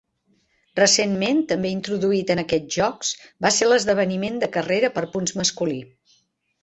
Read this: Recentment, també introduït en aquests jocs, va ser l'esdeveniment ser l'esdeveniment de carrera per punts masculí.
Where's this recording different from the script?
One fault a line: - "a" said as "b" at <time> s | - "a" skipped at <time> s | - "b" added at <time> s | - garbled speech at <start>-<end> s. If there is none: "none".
- "ser l'esdeveniment" skipped at 4.4 s